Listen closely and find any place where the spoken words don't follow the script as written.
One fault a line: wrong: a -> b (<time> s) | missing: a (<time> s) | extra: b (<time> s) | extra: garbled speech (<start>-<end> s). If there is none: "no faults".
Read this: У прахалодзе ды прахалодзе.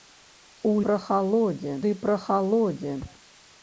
no faults